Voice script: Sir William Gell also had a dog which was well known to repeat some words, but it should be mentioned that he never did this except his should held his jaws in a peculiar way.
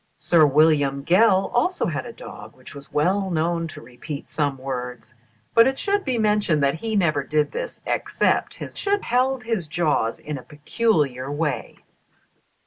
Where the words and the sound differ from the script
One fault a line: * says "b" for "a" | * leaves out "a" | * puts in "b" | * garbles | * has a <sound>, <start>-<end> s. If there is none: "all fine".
all fine